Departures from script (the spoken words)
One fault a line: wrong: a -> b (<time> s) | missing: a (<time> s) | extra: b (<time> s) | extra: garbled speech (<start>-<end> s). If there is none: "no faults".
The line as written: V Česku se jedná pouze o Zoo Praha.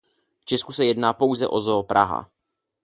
no faults